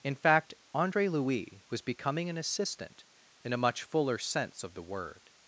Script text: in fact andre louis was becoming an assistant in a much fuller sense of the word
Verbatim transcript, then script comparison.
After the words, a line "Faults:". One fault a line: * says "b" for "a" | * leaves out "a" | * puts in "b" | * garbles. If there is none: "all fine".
in fact andre louis was becoming an assistant in a much fuller sense of the word
Faults:
all fine